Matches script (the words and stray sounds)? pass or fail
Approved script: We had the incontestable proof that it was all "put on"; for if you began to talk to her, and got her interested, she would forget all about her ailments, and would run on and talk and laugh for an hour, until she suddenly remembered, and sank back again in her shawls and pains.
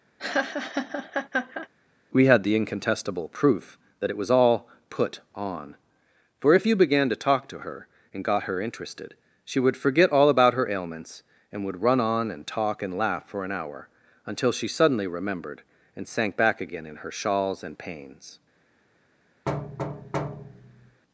fail